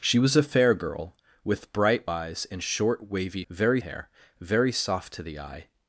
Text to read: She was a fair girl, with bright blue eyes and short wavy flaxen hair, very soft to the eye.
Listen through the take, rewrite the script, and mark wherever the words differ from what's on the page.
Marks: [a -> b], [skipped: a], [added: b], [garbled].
She was a fair girl, with bright [skipped: blue] eyes and short wavy [flaxen -> very] hair, very soft to the eye.